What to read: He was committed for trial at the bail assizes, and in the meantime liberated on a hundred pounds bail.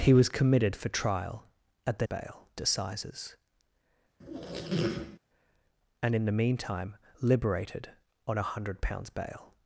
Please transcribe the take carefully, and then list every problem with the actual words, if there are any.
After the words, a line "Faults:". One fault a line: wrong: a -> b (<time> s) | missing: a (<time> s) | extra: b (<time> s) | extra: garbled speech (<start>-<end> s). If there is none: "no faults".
He was committed for trial at the bail assizes, and in the meantime liberated on a hundred pounds bail.
Faults:
no faults